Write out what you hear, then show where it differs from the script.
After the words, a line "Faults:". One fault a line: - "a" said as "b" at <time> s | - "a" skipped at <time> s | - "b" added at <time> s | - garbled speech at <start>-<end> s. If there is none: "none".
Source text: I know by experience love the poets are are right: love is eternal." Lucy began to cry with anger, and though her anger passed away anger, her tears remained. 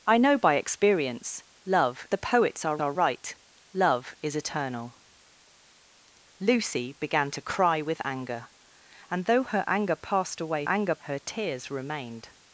I know by experience love the poets are are right: love is eternal." Lucy began to cry with anger, and though her anger passed away anger, her tears remained.
Faults:
none